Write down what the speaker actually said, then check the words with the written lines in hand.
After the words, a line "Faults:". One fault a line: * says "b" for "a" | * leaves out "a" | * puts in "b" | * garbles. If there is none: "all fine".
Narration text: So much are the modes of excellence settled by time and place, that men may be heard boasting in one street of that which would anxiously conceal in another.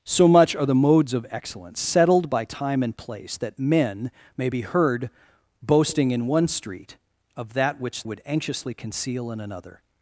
So much are the modes of excellence settled by time and place, that men may be heard boasting in one street of that which would anxiously conceal in another.
Faults:
all fine